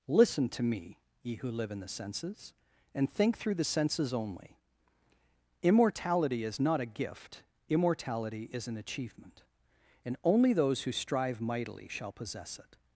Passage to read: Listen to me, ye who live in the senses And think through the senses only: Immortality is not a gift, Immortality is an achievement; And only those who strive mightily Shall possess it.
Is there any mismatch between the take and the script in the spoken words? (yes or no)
no